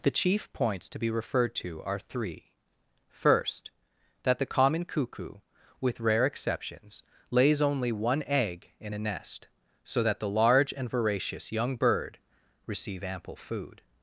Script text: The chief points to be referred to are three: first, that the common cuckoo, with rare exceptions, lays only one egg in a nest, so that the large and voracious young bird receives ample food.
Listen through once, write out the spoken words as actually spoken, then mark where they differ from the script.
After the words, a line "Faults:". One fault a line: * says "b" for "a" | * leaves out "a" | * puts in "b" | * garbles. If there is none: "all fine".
The chief points to be referred to are three: first, that the common cuckoo, with rare exceptions, lays only one egg in a nest, so that the large and voracious young bird receive ample food.
Faults:
* says "receive" for "receives"